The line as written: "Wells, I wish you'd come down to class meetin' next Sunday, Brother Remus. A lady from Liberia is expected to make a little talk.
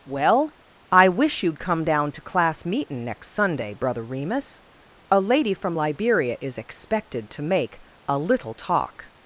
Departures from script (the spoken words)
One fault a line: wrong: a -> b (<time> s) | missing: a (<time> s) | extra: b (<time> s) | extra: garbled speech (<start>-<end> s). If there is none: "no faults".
wrong: Wells -> Well (0.1 s)